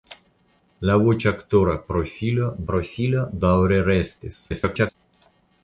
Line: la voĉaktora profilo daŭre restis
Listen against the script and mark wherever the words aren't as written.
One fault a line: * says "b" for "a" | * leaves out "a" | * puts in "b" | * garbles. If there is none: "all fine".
* puts in "profilo"
* garbles